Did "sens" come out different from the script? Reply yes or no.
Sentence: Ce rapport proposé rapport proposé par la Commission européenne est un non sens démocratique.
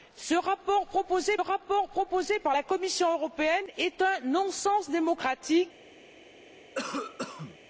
no